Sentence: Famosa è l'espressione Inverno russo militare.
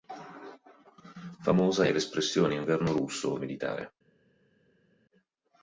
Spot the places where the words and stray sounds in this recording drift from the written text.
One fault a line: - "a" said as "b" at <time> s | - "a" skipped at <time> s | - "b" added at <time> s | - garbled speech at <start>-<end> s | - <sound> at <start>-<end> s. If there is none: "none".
none